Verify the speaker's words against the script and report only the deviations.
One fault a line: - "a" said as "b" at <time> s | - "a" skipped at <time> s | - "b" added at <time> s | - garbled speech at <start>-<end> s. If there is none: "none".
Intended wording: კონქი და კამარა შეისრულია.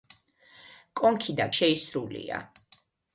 - "კამარა" skipped at 1.5 s